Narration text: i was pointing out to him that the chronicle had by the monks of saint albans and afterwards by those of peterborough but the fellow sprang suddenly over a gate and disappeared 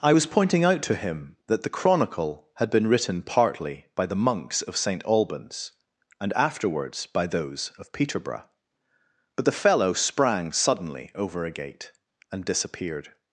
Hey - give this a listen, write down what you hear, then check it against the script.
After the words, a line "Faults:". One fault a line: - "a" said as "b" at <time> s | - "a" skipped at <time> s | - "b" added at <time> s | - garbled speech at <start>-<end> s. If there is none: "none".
i was pointing out to him that the chronicle had been written partly by the monks of saint albans and afterwards by those of peterborough but the fellow sprang suddenly over a gate and disappeared
Faults:
- "been written partly" added at 2.7 s